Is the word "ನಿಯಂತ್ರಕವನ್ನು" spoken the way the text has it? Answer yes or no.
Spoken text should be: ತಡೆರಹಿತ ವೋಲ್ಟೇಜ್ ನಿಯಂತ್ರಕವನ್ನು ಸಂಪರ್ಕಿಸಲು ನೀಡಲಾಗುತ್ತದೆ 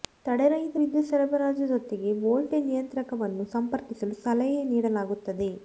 yes